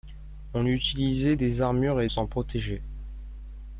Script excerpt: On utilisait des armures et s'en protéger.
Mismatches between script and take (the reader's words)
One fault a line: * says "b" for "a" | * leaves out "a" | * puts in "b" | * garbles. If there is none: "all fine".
all fine